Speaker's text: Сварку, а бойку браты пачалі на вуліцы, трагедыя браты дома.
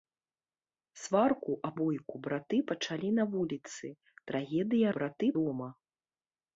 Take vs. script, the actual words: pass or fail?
pass